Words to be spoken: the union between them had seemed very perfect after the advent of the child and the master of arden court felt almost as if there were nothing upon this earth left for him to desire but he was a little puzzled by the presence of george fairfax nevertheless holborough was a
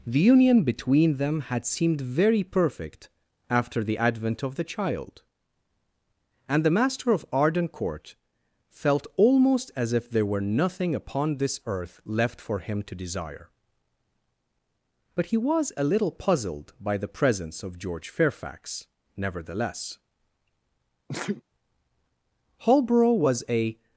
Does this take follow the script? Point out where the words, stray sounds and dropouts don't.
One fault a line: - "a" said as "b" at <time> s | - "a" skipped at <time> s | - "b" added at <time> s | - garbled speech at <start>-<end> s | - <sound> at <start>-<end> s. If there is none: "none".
- sneeze at 21.1-21.4 s